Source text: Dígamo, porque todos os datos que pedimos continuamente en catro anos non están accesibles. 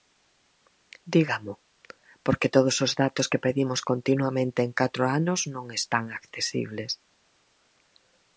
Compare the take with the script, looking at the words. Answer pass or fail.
pass